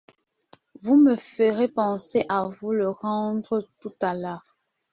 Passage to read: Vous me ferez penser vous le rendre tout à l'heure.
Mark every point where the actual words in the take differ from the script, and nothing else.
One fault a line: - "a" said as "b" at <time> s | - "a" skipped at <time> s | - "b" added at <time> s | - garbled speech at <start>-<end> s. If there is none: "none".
- "à" added at 2.3 s